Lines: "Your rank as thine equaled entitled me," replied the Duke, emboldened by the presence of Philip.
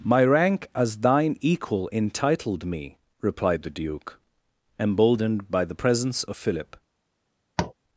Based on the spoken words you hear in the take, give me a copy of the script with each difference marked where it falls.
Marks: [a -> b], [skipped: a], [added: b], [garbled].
["Your -> My] rank as thine [equaled -> equal] entitled me," replied the Duke, emboldened by the presence of Philip.